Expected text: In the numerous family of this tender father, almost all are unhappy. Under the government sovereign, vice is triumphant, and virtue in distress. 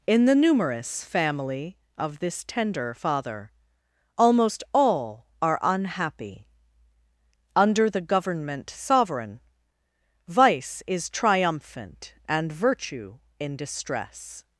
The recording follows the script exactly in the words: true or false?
true